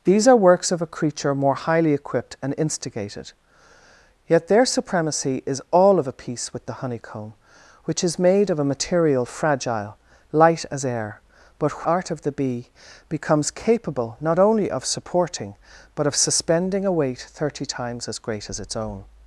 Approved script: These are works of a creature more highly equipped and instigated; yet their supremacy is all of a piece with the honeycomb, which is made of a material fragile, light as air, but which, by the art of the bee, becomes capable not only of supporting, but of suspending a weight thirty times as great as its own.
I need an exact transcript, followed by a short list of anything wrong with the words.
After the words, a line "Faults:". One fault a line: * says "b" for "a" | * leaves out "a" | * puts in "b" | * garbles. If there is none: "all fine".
These are works of a creature more highly equipped and instigated; yet their supremacy is all of a piece with the honeycomb, which is made of a material fragile, light as air, but art of the bee, becomes capable not only of supporting, but of suspending a weight thirty times as great as its own.
Faults:
* leaves out "which by the"